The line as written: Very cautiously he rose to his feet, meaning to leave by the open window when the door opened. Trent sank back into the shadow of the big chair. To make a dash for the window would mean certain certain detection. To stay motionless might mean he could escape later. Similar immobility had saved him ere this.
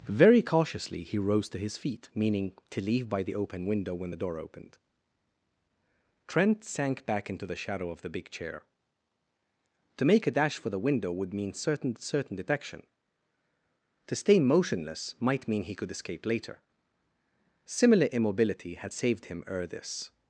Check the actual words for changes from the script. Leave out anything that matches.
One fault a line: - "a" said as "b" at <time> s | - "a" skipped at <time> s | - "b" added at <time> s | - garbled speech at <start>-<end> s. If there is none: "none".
none